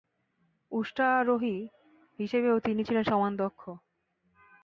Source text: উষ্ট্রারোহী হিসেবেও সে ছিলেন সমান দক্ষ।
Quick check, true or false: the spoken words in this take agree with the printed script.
false